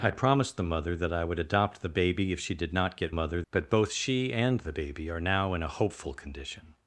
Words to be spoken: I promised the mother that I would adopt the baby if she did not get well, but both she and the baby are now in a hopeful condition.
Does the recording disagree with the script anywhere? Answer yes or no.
yes